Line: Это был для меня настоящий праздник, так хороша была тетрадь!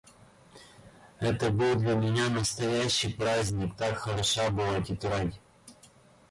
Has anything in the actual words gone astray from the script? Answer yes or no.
no